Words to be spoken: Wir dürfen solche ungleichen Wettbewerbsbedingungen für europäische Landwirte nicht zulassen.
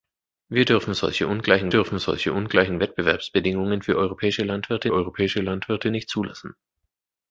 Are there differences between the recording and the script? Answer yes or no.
yes